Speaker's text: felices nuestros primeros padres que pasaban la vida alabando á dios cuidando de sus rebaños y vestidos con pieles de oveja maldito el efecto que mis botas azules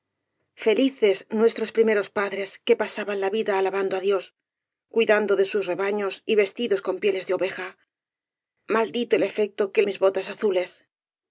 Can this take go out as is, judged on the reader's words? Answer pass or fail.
pass